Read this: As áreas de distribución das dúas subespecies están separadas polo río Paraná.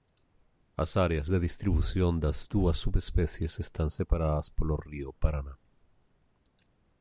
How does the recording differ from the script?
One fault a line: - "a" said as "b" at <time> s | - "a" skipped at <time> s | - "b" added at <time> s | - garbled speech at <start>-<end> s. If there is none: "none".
none